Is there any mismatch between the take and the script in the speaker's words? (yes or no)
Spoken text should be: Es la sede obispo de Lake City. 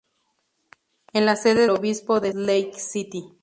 no